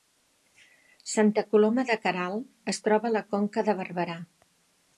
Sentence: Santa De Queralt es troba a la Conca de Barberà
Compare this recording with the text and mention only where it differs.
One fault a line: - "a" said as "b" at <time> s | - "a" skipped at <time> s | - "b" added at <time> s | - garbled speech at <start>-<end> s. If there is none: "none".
- "Coloma" added at 1.5 s